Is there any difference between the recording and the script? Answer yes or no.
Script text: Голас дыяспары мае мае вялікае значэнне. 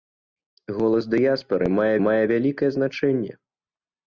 no